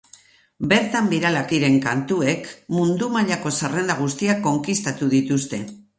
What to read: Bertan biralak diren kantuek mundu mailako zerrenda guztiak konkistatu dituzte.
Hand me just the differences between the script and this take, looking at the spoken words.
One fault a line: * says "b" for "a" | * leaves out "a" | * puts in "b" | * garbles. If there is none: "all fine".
all fine